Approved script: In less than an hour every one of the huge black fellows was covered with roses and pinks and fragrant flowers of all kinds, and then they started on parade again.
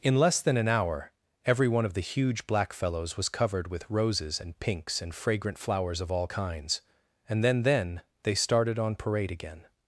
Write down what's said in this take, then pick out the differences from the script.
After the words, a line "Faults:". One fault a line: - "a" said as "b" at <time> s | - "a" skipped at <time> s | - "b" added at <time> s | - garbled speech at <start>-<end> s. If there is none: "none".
In less than an hour every one of the huge black fellows was covered with roses and pinks and fragrant flowers of all kinds, and then then they started on parade again.
Faults:
- "then" added at 7.6 s